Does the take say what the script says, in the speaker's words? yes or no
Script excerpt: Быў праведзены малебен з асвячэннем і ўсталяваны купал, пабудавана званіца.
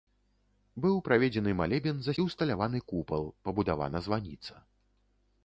no